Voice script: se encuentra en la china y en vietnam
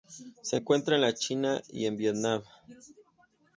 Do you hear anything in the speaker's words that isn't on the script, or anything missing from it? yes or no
no